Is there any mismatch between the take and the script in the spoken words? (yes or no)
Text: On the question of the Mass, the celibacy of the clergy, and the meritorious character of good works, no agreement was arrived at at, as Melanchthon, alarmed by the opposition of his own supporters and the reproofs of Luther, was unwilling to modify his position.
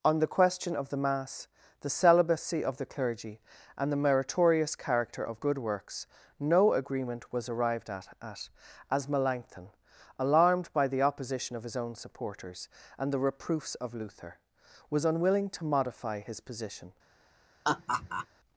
no